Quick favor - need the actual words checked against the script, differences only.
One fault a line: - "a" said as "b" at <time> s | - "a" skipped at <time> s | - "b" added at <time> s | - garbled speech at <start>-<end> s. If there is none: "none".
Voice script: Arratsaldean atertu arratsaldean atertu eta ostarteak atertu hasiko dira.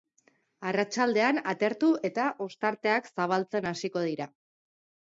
- "arratsaldean atertu" skipped at 1.9 s
- "atertu" said as "zabaltzen" at 3.2 s